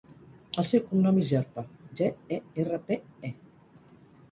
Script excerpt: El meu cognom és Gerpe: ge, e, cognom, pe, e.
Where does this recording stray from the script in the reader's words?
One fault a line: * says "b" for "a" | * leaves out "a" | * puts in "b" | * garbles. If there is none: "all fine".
* says "seu" for "meu"
* says "erra" for "cognom"